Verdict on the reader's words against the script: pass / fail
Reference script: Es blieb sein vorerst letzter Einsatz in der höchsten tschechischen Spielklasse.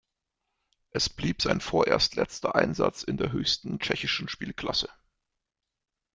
pass